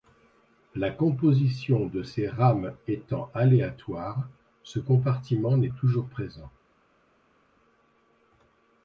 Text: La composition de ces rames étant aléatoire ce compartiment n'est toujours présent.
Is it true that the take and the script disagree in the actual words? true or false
false